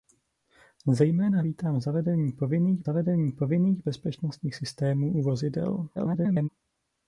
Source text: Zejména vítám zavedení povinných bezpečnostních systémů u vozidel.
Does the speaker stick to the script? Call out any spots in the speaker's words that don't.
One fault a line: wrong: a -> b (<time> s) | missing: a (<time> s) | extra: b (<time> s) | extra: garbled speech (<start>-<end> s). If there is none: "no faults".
extra: zavedení povinných (2.8 s)
extra: garbled speech (5.9-6.5 s)